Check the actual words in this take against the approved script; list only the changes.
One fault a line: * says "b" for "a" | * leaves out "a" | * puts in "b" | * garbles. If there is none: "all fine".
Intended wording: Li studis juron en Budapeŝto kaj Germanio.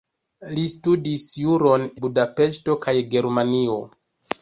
* leaves out "en"